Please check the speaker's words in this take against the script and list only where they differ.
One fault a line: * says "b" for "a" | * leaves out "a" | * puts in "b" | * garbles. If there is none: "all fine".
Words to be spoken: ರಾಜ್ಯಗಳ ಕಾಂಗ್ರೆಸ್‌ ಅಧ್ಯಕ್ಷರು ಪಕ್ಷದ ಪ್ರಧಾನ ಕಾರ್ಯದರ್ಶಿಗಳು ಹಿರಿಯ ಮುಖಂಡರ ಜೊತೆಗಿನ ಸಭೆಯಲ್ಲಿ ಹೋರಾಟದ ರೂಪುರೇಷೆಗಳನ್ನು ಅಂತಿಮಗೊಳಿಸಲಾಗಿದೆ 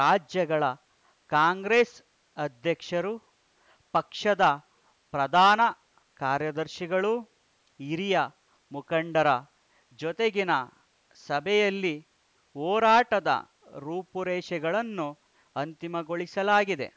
all fine